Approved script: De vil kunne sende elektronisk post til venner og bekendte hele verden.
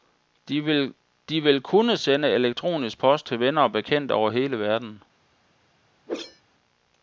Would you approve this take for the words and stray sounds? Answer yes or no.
no